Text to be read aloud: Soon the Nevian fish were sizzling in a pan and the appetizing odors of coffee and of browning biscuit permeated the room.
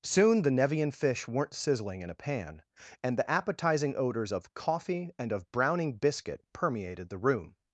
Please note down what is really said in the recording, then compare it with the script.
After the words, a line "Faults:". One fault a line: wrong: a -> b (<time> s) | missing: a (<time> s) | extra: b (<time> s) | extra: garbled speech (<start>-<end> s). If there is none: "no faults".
Soon the Nevian fish weren't sizzling in a pan and the appetizing odors of coffee and of browning biscuit permeated the room.
Faults:
wrong: were -> weren't (1.3 s)